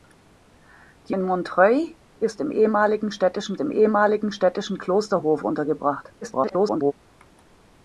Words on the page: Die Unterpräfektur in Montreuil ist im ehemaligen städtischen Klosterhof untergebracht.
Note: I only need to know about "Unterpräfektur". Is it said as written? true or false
false